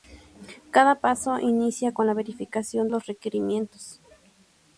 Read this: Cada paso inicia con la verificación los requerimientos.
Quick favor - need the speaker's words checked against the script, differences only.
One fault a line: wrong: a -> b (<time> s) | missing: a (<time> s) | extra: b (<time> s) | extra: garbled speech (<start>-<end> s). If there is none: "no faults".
no faults